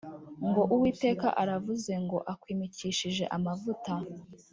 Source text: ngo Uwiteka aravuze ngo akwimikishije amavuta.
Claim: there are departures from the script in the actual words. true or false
false